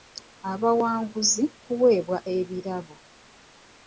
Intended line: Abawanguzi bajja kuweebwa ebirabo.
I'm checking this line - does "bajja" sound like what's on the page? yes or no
no